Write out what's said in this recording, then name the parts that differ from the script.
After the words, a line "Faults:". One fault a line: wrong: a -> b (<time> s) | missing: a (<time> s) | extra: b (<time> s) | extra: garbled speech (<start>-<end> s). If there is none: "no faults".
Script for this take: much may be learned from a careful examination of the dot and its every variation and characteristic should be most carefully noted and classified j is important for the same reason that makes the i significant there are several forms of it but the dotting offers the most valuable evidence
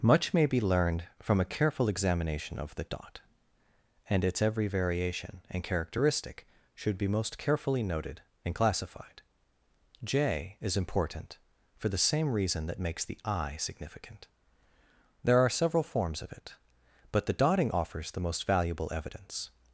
much may be learned from a careful examination of the dot and its every variation and characteristic should be most carefully noted and classified j is important for the same reason that makes the i significant there are several forms of it but the dotting offers the most valuable evidence
Faults:
no faults